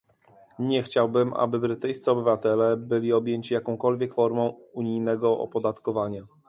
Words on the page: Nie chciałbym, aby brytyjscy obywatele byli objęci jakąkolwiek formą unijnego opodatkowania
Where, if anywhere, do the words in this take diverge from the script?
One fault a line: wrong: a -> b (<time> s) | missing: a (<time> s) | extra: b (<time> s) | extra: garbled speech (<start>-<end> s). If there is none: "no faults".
no faults